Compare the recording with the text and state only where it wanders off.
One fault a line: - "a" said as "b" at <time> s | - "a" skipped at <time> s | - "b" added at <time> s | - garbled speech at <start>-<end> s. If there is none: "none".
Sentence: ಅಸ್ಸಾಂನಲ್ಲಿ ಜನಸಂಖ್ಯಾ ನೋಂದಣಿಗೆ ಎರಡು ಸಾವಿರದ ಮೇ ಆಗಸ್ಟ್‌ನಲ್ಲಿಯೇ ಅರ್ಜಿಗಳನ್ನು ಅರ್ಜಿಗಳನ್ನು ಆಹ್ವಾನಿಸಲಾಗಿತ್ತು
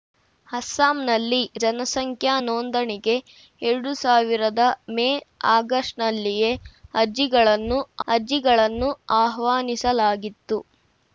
none